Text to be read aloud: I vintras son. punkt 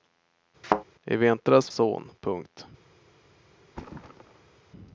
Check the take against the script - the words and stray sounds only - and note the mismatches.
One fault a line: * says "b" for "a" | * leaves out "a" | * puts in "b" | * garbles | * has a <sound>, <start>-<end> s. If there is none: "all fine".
* has a thud, 0.6-0.8 s
* has a thud, 3.7-4.6 s